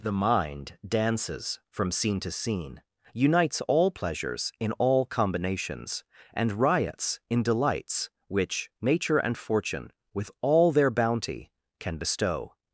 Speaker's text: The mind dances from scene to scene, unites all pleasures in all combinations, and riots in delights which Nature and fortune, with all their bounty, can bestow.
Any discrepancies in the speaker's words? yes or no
no